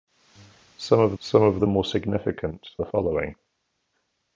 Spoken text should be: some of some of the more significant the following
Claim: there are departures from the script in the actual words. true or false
false